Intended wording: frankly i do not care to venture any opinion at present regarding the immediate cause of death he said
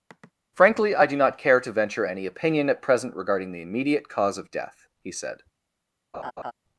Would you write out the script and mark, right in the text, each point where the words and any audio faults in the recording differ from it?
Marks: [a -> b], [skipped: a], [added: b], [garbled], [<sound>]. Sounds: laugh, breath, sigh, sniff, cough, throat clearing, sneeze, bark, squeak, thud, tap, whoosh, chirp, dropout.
[sigh] frankly i do not care to venture any opinion at present regarding the immediate cause of death he said [laugh]